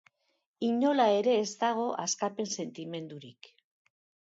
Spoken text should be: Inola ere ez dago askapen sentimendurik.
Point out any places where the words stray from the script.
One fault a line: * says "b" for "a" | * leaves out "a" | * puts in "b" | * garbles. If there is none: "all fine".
all fine